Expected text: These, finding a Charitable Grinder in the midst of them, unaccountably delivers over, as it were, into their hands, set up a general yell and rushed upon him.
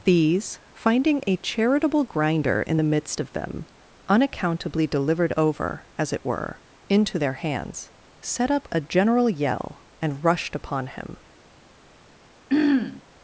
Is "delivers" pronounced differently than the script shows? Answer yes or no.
yes